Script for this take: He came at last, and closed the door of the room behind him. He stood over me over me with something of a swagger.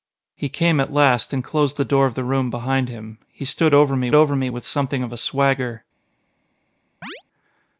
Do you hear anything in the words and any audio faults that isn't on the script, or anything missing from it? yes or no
yes